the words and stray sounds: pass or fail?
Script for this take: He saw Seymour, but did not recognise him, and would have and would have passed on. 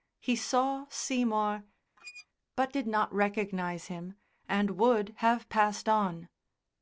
fail